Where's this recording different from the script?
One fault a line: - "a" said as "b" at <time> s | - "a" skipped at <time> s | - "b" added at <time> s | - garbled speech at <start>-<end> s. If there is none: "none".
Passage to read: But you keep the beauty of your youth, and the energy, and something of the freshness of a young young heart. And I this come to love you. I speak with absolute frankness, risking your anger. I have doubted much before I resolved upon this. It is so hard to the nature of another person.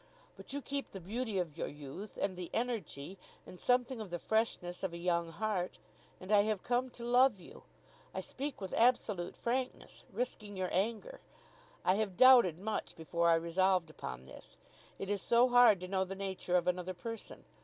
- "young" skipped at 5.3 s
- "this" said as "have" at 6.4 s
- "know" added at 15.9 s